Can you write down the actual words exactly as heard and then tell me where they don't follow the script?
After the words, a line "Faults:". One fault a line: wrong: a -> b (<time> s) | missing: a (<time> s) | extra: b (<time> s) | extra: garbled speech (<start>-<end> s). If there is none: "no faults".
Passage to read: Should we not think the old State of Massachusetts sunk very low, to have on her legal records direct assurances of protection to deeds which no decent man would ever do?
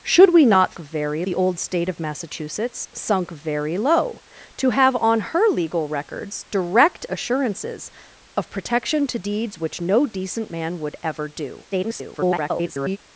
Should we not very the old State of Massachusetts sunk very low, to have on her legal records direct assurances of protection to deeds which no decent man would ever do? [garbled]
Faults:
wrong: think -> very (0.8 s)
extra: garbled speech (11.7-13.0 s)